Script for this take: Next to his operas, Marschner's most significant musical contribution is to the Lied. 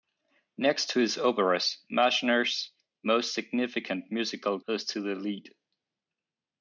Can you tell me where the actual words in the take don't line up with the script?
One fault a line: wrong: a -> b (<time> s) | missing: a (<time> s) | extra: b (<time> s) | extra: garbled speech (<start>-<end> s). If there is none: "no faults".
missing: contribution (4.6 s)